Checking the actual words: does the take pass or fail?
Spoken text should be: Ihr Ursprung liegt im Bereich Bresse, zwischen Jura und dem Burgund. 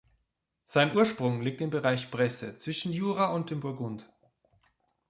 fail